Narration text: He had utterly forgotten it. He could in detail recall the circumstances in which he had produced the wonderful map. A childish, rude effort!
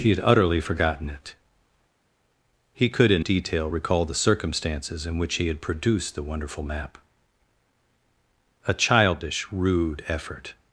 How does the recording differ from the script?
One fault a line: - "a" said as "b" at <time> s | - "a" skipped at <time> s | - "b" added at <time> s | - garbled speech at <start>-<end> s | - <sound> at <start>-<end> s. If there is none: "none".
none